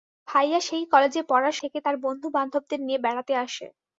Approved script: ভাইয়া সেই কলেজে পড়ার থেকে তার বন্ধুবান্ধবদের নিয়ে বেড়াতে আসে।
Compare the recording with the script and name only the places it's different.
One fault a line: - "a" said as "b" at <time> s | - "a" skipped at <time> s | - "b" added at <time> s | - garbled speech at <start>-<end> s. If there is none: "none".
none